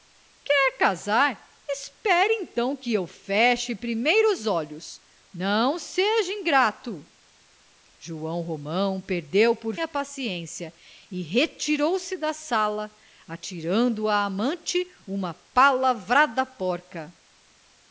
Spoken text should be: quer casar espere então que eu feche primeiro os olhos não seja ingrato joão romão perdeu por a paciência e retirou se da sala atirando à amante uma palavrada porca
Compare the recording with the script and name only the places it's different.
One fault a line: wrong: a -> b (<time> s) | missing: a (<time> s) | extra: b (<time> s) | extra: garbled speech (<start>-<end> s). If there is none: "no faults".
no faults